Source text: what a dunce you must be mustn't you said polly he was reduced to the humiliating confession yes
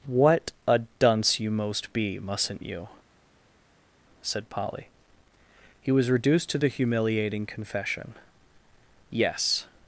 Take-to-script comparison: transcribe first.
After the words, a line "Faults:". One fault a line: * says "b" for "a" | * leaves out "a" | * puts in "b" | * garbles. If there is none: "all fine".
what a dunce you most be mustn't you said polly he was reduced to the humiliating confession yes
Faults:
* says "most" for "must"